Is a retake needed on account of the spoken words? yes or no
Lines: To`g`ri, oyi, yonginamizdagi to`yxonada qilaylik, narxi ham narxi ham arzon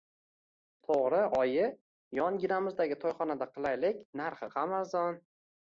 yes